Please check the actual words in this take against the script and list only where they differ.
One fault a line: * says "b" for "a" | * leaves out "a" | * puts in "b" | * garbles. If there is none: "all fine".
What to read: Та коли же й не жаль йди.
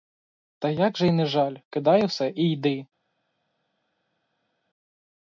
* says "як" for "коли"
* puts in "кидай усе і"